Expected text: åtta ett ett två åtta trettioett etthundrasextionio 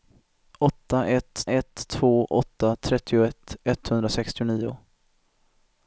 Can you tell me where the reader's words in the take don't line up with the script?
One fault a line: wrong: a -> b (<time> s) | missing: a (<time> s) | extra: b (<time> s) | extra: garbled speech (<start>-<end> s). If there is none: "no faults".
no faults